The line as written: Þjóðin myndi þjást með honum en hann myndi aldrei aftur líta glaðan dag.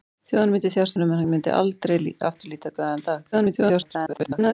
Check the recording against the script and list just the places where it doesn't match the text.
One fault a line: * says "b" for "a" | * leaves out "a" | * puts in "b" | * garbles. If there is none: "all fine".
* leaves out "með"
* garbles